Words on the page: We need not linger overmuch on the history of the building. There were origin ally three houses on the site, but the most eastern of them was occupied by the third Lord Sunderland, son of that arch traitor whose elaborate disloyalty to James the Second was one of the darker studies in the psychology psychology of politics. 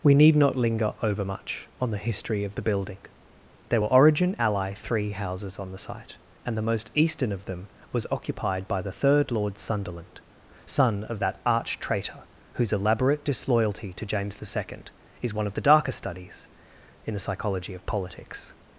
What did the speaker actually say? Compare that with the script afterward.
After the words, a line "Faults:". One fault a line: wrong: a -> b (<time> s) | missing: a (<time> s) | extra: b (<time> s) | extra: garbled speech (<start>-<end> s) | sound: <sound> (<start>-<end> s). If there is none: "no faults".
We need not linger overmuch on the history of the building. There were origin ally three houses on the site, and the most eastern of them was occupied by the third Lord Sunderland, son of that arch traitor whose elaborate disloyalty to James the Second is one of the darker studies in the psychology of politics.
Faults:
wrong: but -> and (6.4 s)
wrong: was -> is (15.2 s)
missing: psychology (17.7 s)